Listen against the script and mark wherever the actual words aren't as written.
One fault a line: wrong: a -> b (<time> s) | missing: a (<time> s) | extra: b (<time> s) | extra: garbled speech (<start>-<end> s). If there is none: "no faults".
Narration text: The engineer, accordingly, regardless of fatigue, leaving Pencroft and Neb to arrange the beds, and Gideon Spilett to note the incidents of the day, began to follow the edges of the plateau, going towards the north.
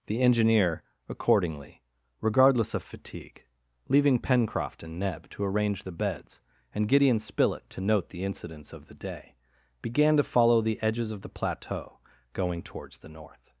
no faults